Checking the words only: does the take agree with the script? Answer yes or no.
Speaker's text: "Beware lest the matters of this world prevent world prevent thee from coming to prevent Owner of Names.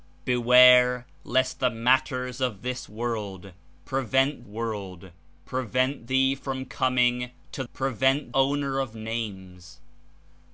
yes